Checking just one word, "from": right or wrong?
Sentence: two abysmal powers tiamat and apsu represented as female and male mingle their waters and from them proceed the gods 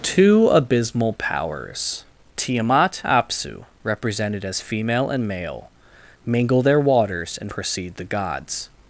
wrong